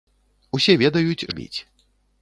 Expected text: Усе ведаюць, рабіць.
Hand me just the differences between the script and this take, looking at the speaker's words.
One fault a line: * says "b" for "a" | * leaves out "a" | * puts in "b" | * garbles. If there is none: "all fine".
all fine